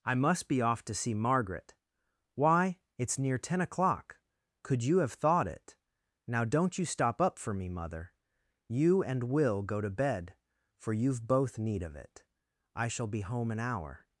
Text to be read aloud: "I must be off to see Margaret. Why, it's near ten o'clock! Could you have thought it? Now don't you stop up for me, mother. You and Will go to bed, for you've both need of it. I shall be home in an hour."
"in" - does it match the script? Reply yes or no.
no